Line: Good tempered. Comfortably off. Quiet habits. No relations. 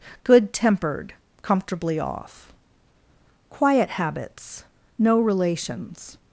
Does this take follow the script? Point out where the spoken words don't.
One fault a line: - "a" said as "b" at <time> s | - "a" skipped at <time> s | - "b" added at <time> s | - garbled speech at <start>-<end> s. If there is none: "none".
none